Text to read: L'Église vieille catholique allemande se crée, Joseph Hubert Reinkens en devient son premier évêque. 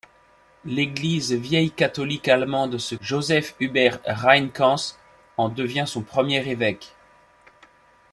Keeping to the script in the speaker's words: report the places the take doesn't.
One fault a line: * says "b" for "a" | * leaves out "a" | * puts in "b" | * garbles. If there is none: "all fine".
* leaves out "crée"